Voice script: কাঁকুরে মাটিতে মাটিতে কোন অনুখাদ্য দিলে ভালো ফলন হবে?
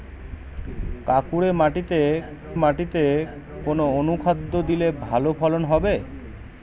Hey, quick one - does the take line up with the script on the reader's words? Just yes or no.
yes